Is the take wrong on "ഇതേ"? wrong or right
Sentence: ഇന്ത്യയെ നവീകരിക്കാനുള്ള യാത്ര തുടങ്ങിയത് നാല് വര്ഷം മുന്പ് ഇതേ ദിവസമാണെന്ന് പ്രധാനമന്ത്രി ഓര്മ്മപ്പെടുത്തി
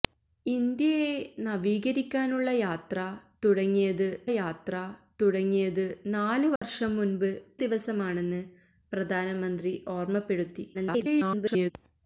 wrong